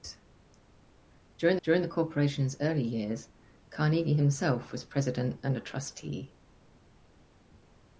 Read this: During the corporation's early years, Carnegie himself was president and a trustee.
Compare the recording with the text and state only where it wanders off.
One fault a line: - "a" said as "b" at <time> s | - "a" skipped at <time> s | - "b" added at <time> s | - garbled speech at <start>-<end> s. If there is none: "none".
- "during" added at 1.6 s